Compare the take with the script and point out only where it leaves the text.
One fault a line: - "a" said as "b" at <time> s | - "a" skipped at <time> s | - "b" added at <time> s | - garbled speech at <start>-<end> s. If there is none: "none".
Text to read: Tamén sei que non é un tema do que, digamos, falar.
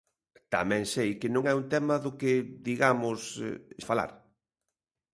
none